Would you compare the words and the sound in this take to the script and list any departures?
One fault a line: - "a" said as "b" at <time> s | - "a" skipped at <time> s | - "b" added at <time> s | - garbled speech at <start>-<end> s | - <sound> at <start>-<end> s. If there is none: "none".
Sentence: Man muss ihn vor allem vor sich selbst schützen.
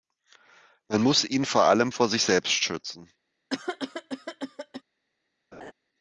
- cough at 3.5-4.8 s
- laugh at 5.5-5.7 s